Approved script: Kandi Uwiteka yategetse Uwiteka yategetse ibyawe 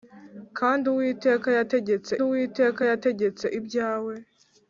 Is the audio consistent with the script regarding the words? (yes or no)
yes